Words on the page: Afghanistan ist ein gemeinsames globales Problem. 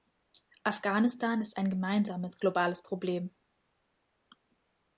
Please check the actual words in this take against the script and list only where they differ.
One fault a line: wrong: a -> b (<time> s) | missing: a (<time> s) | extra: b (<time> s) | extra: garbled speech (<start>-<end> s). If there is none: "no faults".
no faults